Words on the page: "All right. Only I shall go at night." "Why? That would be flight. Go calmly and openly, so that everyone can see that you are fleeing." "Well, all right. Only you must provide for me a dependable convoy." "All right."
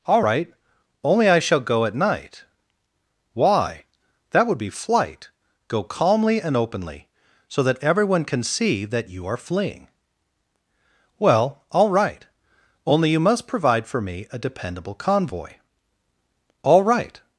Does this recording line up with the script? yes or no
yes